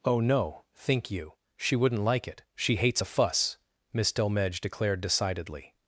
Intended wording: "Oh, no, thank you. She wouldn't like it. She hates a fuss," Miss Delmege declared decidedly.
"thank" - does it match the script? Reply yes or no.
no